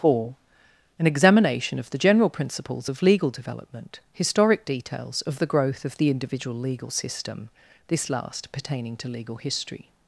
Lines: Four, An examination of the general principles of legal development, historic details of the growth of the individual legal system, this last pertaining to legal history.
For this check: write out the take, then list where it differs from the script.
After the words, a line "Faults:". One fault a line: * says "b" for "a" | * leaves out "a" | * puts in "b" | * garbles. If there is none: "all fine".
Four, An examination of the general principles of legal development, historic details of the growth of the individual legal system, this last pertaining to legal history.
Faults:
all fine